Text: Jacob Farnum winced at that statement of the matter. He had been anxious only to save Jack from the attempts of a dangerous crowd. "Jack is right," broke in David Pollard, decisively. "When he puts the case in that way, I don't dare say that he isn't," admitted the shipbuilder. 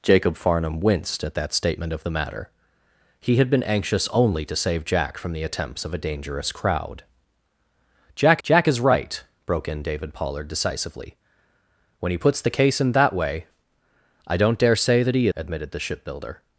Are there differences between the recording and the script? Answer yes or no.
yes